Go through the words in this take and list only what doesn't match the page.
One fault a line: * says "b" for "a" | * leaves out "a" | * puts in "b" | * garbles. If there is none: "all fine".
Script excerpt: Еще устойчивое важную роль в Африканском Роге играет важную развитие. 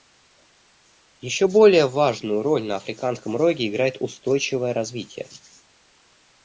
* says "более" for "устойчивое"
* says "на" for "в"
* says "устойчивое" for "важную"